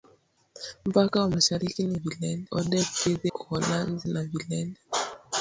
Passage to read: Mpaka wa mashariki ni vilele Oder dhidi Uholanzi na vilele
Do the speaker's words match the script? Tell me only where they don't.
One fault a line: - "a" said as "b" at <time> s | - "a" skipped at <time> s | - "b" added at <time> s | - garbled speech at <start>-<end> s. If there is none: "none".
none